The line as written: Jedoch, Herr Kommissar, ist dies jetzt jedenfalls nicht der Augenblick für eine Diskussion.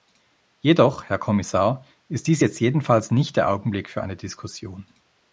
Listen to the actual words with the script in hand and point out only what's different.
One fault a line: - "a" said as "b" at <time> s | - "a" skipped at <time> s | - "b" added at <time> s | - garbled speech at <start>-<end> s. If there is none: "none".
none